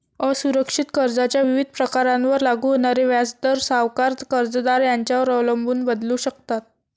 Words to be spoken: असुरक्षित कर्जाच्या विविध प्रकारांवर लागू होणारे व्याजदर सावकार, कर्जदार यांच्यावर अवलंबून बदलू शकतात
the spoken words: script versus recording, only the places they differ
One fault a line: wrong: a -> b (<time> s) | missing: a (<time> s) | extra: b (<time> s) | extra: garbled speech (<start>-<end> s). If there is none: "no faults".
no faults